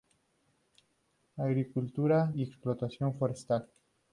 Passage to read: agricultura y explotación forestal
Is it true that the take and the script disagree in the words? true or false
false